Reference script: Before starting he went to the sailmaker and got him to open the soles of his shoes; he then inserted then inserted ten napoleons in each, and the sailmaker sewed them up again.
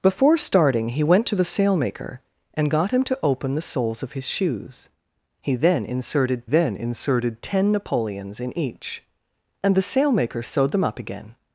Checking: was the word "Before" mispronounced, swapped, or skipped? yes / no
no